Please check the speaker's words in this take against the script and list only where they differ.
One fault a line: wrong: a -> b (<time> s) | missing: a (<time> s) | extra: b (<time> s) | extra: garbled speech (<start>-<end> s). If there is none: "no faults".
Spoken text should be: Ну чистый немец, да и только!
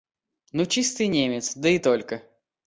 no faults